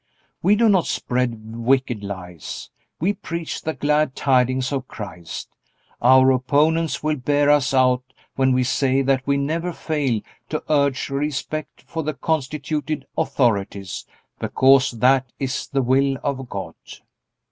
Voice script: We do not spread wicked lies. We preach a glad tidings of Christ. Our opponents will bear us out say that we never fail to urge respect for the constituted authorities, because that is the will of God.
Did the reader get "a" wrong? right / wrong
wrong